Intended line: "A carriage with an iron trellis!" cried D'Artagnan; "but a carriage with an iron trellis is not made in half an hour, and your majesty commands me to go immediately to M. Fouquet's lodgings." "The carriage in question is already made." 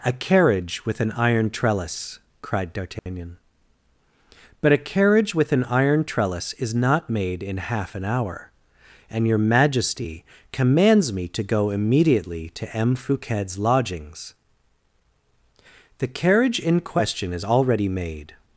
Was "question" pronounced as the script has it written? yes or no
yes